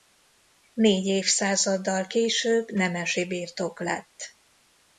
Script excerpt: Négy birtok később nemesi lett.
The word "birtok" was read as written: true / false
false